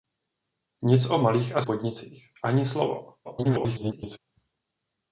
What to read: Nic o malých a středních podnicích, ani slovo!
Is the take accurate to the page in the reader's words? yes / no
no